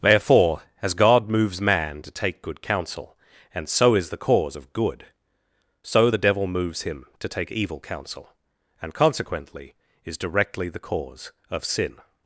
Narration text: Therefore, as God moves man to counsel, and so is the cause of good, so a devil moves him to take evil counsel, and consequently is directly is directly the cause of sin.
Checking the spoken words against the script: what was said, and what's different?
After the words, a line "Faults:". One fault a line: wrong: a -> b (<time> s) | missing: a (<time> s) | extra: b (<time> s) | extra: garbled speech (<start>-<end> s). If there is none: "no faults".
Therefore, as God moves man to take good counsel, and so is the cause of good, so the devil moves him to take evil counsel, and consequently is directly the cause of sin.
Faults:
extra: take good (2.1 s)
wrong: a -> the (6.1 s)
missing: is directly (10.7 s)